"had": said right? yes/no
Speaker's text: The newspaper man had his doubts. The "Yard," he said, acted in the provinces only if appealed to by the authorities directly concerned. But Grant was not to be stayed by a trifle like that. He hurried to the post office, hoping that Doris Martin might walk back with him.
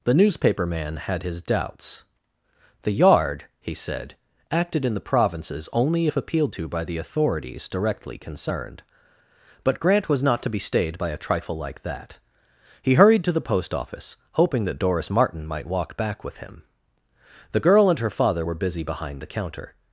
yes